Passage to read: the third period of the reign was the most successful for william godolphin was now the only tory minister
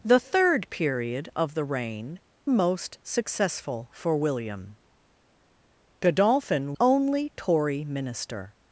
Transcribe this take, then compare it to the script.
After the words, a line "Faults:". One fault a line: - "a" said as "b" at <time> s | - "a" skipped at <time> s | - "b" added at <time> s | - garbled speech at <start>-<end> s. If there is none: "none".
the third period of the reign most successful for william godolphin only tory minister
Faults:
- "was the" skipped at 2.2 s
- "was now the" skipped at 6.7 s